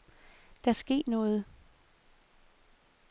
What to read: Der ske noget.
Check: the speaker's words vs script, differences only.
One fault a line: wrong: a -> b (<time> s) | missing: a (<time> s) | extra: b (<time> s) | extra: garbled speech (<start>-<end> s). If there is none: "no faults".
no faults